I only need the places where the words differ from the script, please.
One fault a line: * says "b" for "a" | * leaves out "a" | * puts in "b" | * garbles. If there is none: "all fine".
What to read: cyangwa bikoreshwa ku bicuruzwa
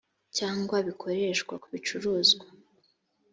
all fine